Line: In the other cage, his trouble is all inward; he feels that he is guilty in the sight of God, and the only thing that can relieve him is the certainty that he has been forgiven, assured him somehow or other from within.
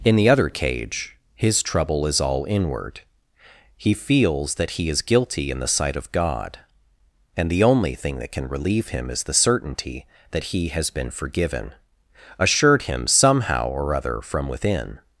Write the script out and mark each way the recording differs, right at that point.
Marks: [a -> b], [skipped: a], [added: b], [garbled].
In the other cage, his trouble is all inward; he feels that he is guilty in the sight of God, and the only thing that can relieve him is the certainty that he has been forgiven, assured him somehow or other from within.